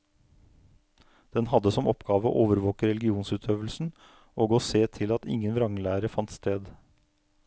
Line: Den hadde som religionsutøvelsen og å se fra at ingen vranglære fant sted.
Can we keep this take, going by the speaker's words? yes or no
no